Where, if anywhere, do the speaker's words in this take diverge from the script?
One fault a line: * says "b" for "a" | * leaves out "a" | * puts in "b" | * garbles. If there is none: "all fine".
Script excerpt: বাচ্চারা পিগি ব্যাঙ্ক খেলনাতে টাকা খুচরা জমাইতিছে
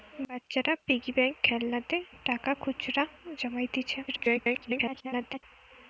* garbles